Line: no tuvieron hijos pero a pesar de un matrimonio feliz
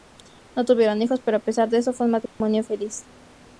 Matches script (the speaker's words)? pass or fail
fail